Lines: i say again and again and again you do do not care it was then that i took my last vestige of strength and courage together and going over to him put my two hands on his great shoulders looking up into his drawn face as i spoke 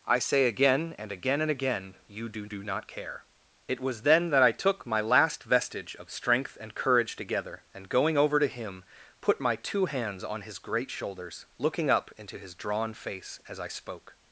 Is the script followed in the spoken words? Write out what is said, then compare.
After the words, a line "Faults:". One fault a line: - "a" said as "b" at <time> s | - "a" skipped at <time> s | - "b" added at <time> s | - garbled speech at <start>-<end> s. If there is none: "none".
i say again and again and again you do do not care it was then that i took my last vestige of strength and courage together and going over to him put my two hands on his great shoulders looking up into his drawn face as i spoke
Faults:
none